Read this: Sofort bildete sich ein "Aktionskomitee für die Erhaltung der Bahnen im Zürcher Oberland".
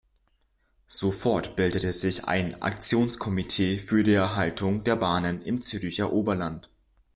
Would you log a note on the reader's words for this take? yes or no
no